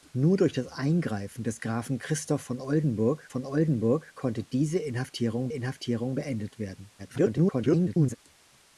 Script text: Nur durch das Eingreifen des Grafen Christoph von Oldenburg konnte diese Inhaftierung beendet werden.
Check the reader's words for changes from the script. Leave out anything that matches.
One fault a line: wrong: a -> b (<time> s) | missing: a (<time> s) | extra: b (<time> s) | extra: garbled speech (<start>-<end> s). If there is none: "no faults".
extra: von Oldenburg (3.3 s)
extra: Inhaftierung (5.5 s)
extra: garbled speech (7.0-8.2 s)